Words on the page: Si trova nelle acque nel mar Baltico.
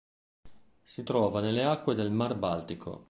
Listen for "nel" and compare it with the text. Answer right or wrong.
wrong